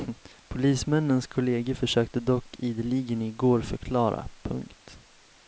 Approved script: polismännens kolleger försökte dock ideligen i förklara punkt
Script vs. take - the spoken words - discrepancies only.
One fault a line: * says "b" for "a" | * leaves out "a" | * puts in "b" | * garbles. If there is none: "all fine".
* puts in "går"